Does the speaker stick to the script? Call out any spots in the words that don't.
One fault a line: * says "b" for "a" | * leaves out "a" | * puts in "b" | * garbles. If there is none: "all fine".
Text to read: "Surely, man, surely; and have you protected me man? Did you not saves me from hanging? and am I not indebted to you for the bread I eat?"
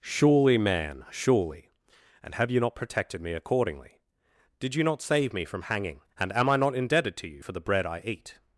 * puts in "not"
* says "accordingly" for "man"
* says "save" for "saves"